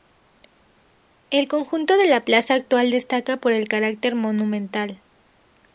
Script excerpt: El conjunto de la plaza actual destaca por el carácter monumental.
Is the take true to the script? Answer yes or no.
yes